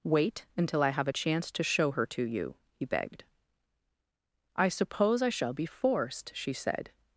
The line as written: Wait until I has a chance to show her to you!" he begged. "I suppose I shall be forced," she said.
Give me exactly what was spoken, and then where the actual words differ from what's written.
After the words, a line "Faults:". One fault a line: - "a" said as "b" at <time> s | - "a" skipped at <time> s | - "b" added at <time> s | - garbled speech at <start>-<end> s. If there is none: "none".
Wait until I have a chance to show her to you!" he begged. "I suppose I shall be forced," she said.
Faults:
- "has" said as "have" at 0.9 s